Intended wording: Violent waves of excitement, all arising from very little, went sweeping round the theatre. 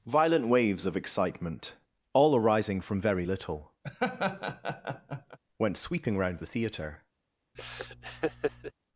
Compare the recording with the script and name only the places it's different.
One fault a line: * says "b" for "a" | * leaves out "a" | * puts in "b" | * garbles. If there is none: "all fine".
all fine